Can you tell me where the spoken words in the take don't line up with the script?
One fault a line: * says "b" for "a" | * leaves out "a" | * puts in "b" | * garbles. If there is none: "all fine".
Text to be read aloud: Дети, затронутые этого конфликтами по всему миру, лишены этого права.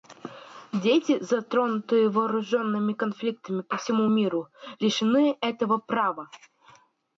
* says "вооруженными" for "этого"